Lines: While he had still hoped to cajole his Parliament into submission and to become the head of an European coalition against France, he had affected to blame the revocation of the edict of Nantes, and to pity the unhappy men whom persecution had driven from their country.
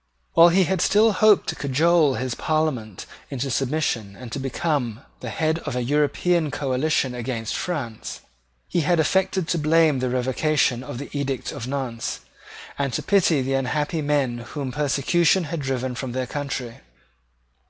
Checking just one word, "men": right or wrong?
right